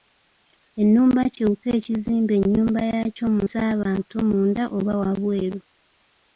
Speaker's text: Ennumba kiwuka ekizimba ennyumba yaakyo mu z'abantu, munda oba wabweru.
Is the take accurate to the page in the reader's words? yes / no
yes